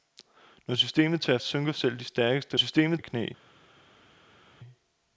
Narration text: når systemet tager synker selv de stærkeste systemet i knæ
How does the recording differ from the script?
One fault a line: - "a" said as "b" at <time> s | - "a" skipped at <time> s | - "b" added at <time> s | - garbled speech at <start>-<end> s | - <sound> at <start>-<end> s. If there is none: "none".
none